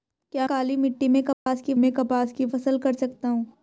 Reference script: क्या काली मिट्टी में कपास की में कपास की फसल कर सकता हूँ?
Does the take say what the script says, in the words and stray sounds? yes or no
no